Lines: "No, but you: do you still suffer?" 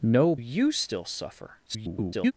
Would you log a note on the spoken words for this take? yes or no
yes